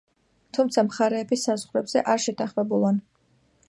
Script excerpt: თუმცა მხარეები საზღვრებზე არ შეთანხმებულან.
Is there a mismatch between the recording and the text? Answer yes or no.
no